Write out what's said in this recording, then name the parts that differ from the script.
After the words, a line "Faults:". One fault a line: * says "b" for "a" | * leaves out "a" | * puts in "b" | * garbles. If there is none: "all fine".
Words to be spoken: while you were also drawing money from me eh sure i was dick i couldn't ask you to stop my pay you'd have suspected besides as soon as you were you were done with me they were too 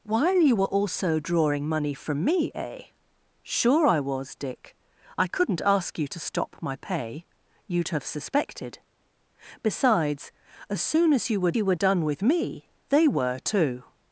while you were also drawing money from me eh sure i was dick i couldn't ask you to stop my pay you'd have suspected besides as soon as you were you were done with me they were too
Faults:
all fine